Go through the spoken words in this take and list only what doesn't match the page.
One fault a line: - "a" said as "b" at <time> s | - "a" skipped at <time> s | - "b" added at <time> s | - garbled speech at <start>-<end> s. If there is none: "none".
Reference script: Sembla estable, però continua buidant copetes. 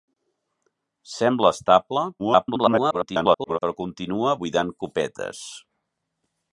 - garbled speech at 2.2-3.6 s